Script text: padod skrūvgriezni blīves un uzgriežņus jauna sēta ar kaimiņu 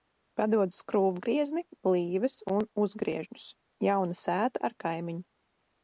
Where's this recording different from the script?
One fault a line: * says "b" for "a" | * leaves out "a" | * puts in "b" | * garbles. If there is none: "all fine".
all fine